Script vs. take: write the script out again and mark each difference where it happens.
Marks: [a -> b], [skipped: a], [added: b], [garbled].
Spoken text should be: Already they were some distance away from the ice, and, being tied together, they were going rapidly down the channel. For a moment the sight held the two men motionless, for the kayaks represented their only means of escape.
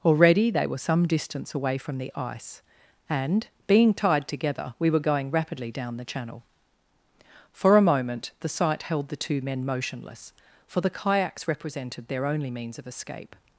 Already they were some distance away from the ice, and, being tied together, [they -> we] were going rapidly down the channel. For a moment the sight held the two men motionless, for the kayaks represented their only means of escape.